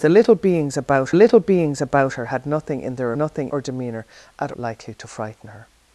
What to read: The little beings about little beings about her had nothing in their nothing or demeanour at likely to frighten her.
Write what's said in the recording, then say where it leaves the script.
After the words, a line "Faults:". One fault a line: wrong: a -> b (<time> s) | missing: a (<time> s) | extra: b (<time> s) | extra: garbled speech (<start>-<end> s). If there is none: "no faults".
The little beings about little beings about her had nothing in their nothing or demeanour at likely to frighten her.
Faults:
no faults